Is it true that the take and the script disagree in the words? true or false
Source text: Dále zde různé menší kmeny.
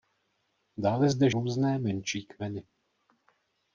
false